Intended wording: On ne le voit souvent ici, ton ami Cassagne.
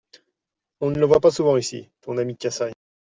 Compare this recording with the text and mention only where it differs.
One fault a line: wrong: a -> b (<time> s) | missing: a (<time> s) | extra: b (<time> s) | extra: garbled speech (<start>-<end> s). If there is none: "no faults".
extra: pas (1.2 s)